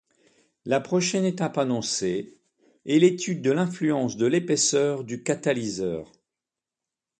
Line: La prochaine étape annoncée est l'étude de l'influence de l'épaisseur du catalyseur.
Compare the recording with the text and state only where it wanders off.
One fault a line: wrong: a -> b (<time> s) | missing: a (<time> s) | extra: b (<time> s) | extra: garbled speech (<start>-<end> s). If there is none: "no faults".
no faults